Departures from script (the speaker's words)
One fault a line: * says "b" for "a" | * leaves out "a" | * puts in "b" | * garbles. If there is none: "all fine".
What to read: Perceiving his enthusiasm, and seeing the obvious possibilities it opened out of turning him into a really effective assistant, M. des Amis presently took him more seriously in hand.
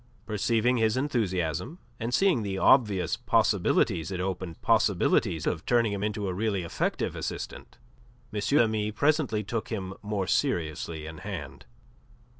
* says "possibilities" for "out"
* leaves out "des"